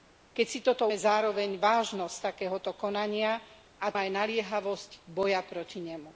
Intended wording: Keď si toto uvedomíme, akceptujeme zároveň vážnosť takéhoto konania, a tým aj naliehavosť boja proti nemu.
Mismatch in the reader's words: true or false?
true